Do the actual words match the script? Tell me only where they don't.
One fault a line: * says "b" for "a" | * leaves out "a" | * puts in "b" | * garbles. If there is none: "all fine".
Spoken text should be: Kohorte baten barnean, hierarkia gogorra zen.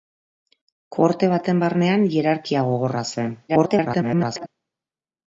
* garbles